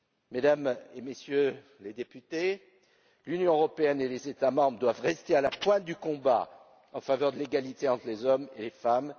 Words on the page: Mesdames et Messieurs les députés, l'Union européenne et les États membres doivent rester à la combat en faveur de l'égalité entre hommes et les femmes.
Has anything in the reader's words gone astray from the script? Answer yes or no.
yes